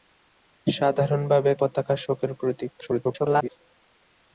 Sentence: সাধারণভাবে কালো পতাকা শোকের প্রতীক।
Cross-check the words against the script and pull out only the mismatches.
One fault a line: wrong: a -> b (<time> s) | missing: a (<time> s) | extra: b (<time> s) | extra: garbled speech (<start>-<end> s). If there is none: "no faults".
missing: কালো (1.5 s)
extra: garbled speech (2.8-3.5 s)